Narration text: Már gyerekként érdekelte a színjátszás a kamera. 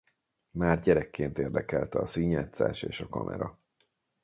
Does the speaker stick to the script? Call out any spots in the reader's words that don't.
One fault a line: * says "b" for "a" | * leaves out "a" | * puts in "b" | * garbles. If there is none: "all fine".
* puts in "és"